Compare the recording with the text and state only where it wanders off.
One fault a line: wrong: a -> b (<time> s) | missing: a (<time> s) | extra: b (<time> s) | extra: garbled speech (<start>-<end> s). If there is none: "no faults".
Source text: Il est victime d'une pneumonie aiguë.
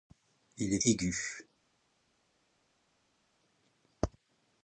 missing: victime d'une pneumonie (0.8 s)